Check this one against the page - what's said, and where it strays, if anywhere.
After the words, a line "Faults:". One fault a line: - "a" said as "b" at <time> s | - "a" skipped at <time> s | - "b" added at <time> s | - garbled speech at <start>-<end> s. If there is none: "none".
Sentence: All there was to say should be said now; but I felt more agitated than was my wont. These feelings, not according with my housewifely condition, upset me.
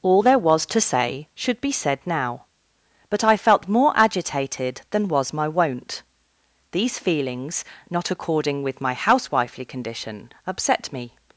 All there was to say should be said now; but I felt more agitated than was my wont. These feelings, not according with my housewifely condition, upset me.
Faults:
none